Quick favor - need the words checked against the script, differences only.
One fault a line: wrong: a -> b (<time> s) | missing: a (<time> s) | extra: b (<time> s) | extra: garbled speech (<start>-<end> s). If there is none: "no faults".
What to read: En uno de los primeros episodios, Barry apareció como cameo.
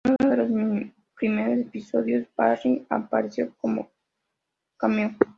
extra: en (0.2 s)